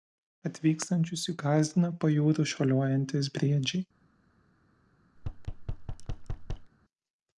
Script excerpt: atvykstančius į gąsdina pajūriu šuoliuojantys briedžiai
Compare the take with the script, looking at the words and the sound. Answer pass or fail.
fail